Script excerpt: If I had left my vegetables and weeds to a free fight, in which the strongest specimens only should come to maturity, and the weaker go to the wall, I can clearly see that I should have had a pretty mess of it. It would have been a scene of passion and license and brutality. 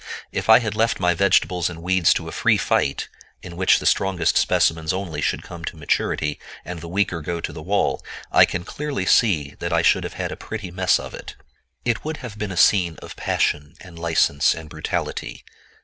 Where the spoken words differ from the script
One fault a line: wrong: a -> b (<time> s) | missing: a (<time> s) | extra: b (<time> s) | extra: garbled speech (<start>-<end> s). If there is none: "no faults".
no faults